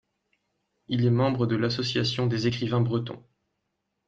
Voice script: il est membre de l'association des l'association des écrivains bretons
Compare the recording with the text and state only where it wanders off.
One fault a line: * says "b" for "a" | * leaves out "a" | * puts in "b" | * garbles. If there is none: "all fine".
* leaves out "l'association des"